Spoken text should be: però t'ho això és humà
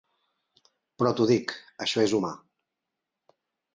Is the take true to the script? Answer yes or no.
no